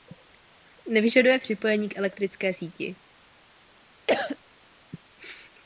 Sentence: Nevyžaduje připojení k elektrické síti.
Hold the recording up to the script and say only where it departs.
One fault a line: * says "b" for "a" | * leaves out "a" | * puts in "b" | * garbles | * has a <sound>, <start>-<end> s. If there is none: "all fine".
* has a cough, 4.1-4.4 s